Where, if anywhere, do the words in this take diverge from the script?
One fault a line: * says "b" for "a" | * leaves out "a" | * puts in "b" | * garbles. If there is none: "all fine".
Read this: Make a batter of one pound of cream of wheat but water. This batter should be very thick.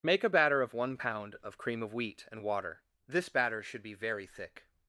* says "and" for "but"